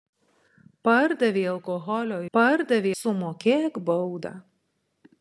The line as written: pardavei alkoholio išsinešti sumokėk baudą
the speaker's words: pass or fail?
fail